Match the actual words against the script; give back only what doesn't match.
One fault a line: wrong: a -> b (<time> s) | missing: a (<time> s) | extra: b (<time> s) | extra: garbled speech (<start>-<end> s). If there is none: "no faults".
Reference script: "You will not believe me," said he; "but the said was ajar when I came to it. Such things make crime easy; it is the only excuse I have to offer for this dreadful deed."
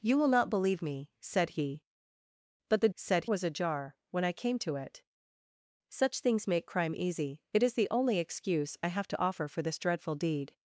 no faults